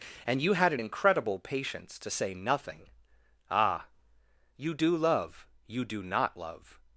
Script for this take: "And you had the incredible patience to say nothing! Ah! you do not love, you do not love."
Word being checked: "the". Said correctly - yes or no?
no